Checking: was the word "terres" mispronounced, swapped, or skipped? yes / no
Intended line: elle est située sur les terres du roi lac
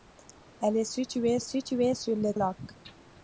yes